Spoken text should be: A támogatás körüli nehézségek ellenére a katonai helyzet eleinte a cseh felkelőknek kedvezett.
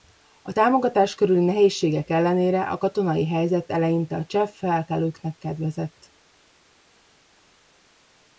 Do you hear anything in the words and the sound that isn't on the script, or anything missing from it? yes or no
no